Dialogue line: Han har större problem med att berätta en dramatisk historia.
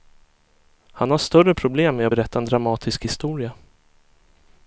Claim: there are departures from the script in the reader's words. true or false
false